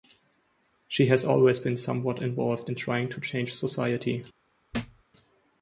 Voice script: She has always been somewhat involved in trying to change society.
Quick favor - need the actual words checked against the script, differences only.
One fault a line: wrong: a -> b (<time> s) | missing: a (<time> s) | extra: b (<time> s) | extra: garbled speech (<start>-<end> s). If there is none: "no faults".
no faults